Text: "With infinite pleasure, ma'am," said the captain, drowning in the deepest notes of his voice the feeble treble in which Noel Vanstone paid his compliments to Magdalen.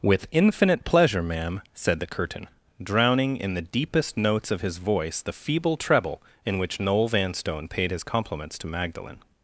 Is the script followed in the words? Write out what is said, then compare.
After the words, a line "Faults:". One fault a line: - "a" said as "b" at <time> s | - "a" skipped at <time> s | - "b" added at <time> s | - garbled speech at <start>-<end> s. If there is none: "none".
"With infinite pleasure, ma'am," said the curtain, drowning in the deepest notes of his voice the feeble treble in which Noel Vanstone paid his compliments to Magdalen.
Faults:
- "captain" said as "curtain" at 2.1 s